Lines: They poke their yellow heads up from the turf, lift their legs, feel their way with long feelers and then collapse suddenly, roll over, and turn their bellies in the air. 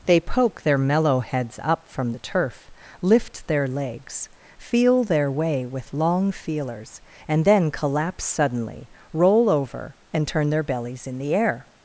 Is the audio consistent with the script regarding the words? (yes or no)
no